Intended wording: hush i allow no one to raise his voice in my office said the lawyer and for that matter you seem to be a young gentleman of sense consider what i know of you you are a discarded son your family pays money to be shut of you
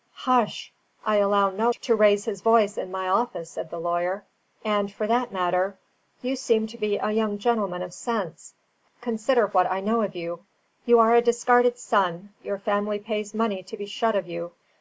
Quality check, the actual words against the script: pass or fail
fail